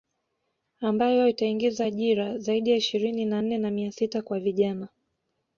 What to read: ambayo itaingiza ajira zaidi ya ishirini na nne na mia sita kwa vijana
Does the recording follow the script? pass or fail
pass